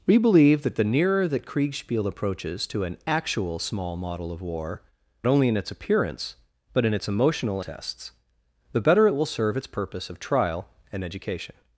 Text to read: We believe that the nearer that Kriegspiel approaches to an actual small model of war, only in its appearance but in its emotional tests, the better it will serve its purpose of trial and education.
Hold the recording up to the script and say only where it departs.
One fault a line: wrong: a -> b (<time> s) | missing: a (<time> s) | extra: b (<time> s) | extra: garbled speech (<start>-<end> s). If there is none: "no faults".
no faults